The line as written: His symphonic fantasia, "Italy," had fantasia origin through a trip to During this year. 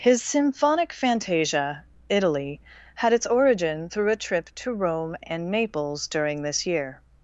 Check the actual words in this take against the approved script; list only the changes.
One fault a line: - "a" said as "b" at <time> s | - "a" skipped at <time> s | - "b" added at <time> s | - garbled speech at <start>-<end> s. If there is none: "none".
- "fantasia" said as "its" at 3.1 s
- "Rome and Naples" added at 4.7 s